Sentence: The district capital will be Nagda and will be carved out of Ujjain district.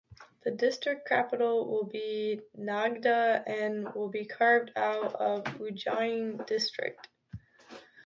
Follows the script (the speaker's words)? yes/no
yes